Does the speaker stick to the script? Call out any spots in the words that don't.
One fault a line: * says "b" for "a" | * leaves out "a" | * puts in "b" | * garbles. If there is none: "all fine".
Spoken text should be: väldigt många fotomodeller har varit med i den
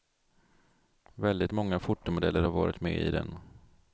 all fine